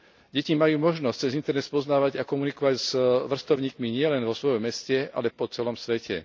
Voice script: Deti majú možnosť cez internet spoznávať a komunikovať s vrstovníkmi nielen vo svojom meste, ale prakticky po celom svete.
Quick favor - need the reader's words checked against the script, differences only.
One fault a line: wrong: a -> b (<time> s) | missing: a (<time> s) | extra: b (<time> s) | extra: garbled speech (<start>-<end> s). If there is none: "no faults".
missing: prakticky (5.3 s)